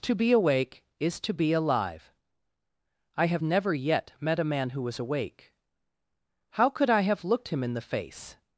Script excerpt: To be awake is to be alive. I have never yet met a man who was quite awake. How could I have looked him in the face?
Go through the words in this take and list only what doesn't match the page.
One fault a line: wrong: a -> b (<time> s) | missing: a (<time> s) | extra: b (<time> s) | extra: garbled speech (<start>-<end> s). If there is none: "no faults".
missing: quite (5.0 s)